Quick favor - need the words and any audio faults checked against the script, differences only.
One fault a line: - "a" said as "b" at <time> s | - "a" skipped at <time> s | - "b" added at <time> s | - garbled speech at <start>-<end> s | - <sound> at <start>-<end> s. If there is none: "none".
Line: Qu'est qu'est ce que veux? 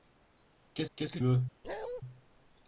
- bark at 1.6-2.0 s